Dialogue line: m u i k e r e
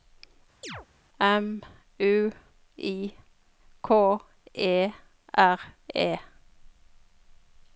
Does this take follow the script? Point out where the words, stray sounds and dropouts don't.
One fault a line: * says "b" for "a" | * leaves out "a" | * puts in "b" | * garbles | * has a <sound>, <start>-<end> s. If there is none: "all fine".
* has a chirp, 0.6-0.9 s